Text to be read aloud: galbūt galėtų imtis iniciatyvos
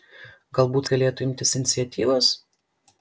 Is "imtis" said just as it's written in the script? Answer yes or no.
yes